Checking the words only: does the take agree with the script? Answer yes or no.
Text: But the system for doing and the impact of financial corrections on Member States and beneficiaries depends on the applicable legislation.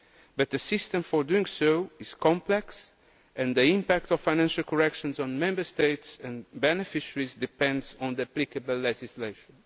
no